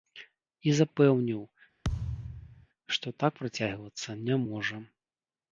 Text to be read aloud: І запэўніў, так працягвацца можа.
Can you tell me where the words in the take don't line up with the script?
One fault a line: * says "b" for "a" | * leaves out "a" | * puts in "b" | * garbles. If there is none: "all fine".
* puts in "што"
* puts in "не"